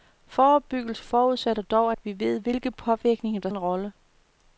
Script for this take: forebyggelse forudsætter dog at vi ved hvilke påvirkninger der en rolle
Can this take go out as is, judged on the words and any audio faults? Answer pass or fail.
pass